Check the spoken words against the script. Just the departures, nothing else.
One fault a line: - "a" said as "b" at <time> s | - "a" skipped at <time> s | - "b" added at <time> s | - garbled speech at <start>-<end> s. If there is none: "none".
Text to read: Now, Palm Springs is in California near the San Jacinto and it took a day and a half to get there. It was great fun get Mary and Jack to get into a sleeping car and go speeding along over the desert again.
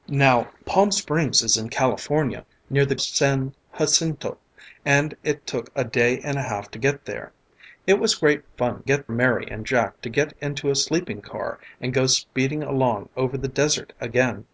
none